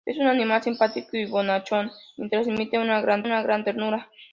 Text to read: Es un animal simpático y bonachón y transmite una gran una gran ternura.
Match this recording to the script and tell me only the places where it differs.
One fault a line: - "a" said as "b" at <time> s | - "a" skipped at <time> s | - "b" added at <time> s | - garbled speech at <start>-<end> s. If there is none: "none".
none